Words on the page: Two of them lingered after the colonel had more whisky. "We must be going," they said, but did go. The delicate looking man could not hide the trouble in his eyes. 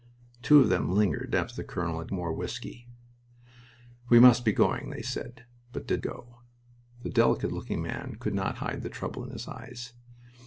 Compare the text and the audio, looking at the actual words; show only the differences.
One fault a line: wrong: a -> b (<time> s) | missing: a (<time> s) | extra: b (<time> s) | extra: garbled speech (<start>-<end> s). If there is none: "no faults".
no faults